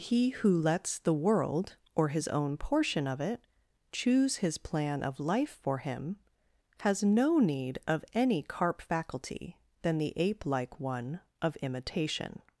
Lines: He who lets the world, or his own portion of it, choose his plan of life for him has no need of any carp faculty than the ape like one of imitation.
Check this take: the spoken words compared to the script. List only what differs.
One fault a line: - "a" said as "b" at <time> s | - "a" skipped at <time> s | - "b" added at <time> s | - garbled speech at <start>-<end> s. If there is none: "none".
none